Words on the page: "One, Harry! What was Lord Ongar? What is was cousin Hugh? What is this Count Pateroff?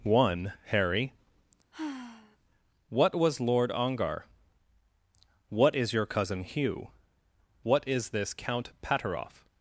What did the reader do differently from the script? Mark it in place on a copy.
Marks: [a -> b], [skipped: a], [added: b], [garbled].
"One, Harry! What was Lord Ongar? What is [was -> your] cousin Hugh? What is this Count Pateroff?